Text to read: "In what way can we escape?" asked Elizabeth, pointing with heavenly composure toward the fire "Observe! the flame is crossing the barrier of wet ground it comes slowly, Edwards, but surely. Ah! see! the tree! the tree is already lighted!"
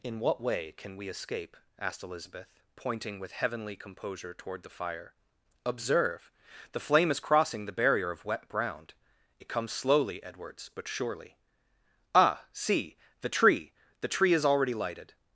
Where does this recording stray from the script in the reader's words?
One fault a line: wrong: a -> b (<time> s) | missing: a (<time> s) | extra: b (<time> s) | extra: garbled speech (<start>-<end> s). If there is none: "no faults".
no faults